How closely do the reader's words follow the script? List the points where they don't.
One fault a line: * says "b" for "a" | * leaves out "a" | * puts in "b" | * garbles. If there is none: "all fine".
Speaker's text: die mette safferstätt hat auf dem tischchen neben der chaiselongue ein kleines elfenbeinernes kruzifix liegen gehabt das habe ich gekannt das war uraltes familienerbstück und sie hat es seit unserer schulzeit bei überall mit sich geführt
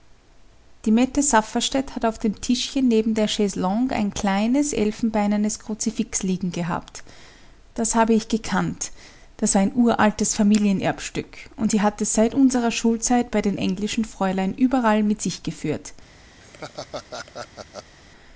* puts in "ein"
* puts in "den englischen fräulein"